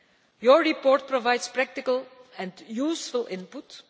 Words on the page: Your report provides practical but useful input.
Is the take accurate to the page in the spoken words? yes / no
no